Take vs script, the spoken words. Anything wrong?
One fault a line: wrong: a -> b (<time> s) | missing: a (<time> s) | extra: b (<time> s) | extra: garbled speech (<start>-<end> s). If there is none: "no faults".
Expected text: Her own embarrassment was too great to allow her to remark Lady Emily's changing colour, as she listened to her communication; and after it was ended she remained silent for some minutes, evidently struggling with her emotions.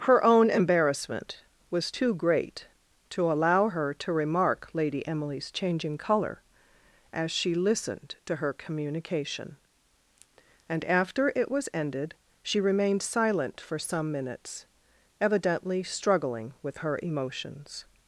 no faults